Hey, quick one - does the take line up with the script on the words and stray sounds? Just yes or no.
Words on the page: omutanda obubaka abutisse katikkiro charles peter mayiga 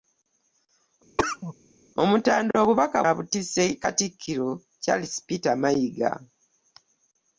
no